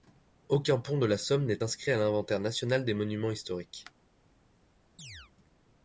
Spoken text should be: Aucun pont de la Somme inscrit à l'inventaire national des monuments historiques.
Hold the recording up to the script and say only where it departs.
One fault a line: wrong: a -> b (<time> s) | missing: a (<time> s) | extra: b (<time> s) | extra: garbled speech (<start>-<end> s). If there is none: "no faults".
extra: n'est (1.4 s)